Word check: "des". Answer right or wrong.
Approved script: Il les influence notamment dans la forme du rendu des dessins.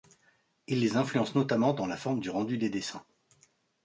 right